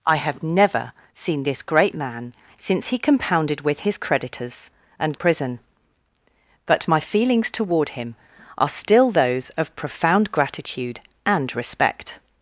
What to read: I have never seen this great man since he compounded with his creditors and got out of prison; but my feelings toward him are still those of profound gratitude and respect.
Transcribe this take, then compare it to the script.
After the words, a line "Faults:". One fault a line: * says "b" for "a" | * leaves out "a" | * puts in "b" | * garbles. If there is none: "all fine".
I have never seen this great man since he compounded with his creditors and prison; but my feelings toward him are still those of profound gratitude and respect.
Faults:
* leaves out "got out of"